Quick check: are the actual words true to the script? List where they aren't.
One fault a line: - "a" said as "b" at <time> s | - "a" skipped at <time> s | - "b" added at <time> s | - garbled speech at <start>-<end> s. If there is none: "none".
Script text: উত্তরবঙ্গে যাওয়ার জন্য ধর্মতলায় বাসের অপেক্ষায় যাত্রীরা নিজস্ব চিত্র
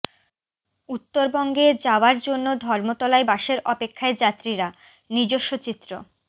none